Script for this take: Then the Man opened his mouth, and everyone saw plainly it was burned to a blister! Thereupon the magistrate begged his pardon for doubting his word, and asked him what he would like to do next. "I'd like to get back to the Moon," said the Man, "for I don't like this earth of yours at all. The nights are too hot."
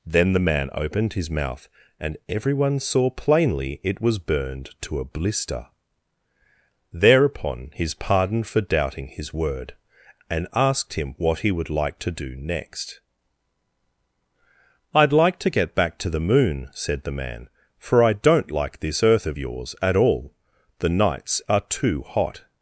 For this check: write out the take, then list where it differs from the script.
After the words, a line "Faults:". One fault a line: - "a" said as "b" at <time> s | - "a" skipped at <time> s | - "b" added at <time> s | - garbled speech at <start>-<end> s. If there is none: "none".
Then the Man opened his mouth, and everyone saw plainly it was burned to a blister! Thereupon his pardon for doubting his word, and asked him what he would like to do next. "I'd like to get back to the Moon," said the Man, "for I don't like this earth of yours at all. The nights are too hot."
Faults:
- "the magistrate begged" skipped at 7.7 s